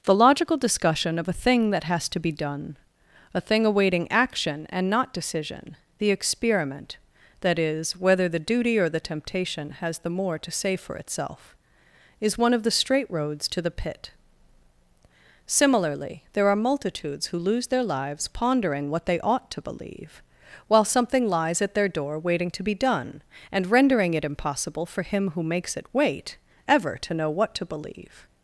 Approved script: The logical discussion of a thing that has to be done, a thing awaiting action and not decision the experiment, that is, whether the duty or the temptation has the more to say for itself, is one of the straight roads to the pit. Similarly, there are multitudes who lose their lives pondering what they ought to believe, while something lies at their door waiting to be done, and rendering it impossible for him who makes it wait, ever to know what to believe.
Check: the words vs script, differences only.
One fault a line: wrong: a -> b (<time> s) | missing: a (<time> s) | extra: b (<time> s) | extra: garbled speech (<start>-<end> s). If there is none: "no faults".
no faults